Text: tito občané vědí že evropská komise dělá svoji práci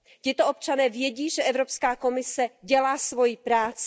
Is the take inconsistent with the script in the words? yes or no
no